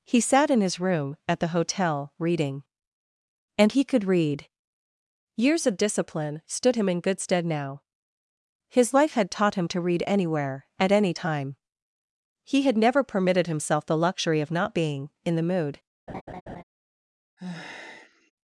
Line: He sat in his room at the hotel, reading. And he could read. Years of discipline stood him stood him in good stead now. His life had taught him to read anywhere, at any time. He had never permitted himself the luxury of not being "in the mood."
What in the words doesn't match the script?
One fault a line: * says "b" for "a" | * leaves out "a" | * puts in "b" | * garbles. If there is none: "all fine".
* leaves out "stood him"